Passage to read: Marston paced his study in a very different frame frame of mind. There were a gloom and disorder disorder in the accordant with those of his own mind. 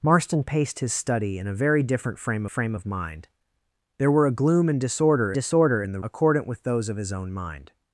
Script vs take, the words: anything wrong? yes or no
no